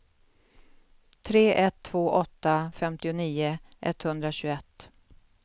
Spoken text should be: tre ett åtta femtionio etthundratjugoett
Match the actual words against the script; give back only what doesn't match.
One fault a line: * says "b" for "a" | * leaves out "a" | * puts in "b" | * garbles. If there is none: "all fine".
* puts in "två"